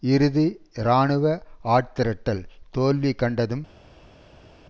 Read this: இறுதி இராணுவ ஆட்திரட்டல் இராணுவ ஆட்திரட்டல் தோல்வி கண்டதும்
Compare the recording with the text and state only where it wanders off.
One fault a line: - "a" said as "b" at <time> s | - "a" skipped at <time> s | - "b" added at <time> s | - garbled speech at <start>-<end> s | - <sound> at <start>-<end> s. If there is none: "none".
- "இராணுவ ஆட்திரட்டல்" skipped at 2.4 s